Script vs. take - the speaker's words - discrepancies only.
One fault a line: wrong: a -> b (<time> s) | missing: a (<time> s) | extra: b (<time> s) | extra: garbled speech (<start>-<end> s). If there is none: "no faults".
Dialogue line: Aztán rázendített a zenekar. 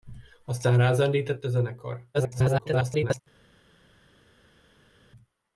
extra: garbled speech (2.1-3.2 s)